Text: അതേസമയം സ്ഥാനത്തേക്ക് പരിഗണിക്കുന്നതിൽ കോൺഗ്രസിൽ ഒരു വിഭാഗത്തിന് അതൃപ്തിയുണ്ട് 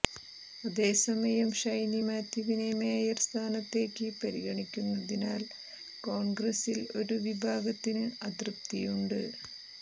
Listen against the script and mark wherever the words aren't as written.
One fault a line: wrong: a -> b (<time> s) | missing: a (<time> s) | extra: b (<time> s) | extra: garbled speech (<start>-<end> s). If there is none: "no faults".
extra: ഷൈനി മാത്യുവിനെ മേയർ (1.6 s)